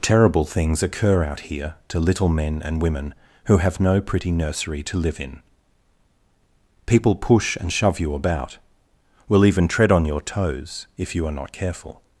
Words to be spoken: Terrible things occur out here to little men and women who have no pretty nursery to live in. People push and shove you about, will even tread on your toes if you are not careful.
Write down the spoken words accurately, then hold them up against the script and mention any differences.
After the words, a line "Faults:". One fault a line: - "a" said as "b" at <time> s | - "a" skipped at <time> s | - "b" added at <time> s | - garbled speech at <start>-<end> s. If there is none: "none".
Terrible things occur out here to little men and women who have no pretty nursery to live in. People push and shove you about, will even tread on your toes if you are not careful.
Faults:
none